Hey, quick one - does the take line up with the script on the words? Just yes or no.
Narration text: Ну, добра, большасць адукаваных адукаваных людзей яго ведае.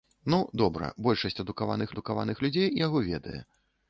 yes